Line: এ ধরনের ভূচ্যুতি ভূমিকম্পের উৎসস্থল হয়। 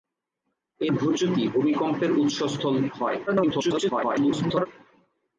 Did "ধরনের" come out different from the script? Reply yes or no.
yes